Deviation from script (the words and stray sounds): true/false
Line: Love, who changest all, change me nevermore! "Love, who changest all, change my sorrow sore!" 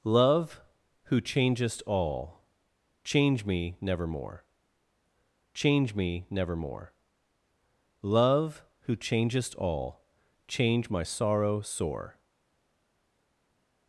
true